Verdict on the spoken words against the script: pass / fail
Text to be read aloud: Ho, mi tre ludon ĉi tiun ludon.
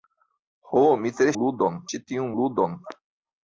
pass